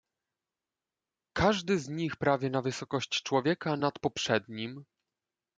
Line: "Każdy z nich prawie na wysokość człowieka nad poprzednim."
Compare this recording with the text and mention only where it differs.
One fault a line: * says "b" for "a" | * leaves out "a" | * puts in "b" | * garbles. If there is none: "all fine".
all fine